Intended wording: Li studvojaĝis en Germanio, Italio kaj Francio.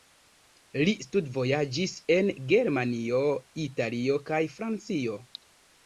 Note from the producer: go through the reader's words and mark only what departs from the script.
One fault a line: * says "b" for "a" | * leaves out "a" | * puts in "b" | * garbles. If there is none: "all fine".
all fine